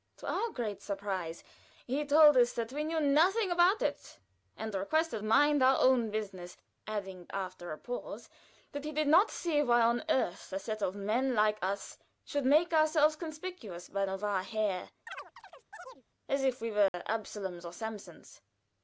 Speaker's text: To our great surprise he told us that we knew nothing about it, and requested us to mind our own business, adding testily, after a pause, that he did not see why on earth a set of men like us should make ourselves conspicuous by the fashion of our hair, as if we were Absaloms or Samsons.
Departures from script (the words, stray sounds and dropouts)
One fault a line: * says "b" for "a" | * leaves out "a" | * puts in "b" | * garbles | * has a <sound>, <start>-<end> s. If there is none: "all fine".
* leaves out "us to"
* leaves out "testily"
* leaves out "the fashion"
* has a chirp, 15.1-16.0 s
* has a dropout, 16.9-16.9 s